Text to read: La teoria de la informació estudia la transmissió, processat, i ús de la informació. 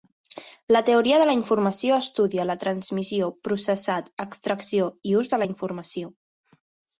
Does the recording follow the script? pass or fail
fail